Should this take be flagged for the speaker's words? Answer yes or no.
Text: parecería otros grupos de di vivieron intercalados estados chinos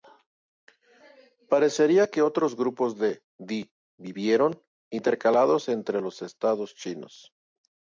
yes